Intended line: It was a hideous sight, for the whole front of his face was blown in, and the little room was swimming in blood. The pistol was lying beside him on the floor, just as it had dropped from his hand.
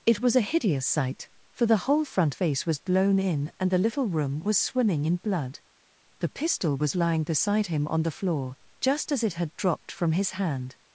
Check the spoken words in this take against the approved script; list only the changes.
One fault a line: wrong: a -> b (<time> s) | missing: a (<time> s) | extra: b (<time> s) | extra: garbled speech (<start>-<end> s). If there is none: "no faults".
missing: of his (2.4 s)